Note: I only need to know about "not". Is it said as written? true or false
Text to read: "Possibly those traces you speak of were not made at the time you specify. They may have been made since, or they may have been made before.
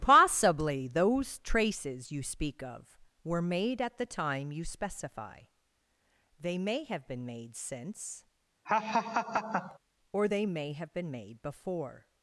false